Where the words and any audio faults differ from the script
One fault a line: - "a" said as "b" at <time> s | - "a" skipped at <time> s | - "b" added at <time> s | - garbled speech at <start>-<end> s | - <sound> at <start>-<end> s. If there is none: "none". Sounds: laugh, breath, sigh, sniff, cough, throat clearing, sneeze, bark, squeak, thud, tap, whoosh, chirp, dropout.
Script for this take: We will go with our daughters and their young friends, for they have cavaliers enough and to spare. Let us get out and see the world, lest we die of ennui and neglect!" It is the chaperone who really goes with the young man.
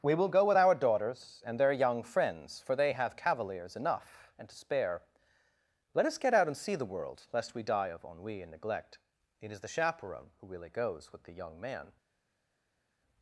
none